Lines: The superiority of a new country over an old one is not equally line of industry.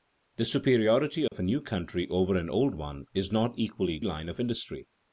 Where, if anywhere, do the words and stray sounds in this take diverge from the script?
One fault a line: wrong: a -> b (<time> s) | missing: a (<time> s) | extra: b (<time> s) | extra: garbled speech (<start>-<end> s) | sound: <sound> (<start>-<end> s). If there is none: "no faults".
sound: dropout (1.3-1.3 s)